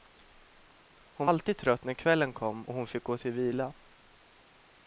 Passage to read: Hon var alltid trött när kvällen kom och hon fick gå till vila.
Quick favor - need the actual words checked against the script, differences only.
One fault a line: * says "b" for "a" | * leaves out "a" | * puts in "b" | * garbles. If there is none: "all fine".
* leaves out "var"